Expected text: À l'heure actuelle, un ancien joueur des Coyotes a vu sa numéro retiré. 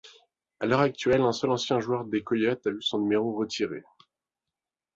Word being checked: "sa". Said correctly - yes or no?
no